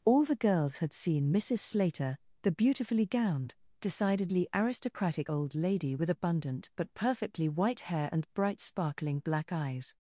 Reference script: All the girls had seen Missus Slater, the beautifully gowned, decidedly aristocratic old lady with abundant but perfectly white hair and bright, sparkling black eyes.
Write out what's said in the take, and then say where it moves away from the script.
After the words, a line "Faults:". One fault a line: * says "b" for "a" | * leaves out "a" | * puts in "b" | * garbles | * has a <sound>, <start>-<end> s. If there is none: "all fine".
All the girls had seen Missus Slater, the beautifully gowned, decidedly aristocratic old lady with abundant but perfectly white hair and bright, sparkling black eyes.
Faults:
all fine